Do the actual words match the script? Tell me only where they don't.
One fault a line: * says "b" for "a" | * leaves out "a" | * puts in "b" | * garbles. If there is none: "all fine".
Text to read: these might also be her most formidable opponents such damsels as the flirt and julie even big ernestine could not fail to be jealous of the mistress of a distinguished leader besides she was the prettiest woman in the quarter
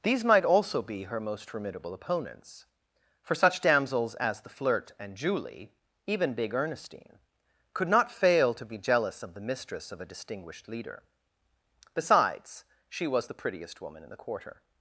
* puts in "for"